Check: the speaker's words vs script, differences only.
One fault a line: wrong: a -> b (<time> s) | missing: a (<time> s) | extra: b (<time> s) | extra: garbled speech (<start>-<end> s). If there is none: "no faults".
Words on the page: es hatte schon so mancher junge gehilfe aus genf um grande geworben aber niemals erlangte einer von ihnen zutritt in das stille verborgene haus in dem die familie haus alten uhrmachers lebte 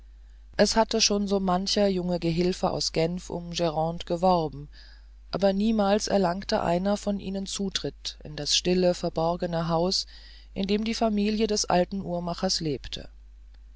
wrong: haus -> des (11.5 s)